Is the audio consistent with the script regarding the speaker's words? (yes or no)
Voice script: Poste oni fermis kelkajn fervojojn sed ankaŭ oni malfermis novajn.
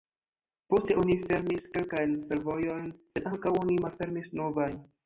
yes